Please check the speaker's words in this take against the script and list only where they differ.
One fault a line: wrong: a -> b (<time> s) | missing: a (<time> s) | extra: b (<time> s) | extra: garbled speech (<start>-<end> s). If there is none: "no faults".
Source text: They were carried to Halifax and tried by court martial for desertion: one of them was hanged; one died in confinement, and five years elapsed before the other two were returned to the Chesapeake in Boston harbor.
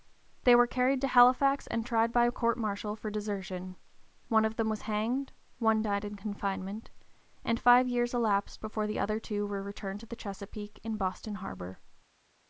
no faults